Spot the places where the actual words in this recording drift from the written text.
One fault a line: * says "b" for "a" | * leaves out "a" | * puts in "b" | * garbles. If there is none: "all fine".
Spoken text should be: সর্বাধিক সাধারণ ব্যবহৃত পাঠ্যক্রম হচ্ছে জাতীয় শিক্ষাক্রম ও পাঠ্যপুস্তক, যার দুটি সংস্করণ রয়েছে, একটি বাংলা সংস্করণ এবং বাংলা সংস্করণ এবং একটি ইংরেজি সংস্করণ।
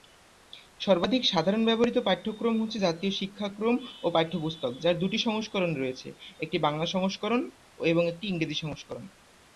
* leaves out "বাংলা সংস্করণ এবং"